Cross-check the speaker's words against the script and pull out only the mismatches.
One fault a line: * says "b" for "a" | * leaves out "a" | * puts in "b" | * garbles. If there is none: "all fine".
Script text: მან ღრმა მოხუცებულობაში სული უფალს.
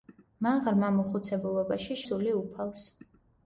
all fine